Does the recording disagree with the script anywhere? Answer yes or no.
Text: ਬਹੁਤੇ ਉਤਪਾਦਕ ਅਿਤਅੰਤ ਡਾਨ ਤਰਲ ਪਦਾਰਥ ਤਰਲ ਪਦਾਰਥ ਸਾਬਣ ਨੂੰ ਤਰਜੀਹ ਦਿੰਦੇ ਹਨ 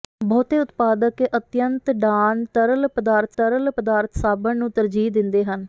no